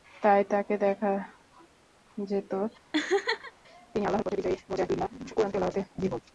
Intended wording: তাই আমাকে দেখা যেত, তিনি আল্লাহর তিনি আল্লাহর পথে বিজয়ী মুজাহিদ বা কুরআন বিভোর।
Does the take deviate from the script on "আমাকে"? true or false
true